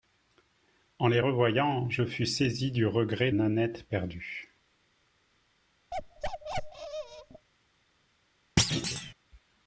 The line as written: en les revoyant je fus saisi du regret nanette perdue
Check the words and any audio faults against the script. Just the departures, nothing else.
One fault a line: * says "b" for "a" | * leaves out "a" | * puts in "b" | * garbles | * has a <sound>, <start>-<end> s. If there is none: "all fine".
* has a bark, 5.9-7.5 s
* has a thud, 8.6-9.1 s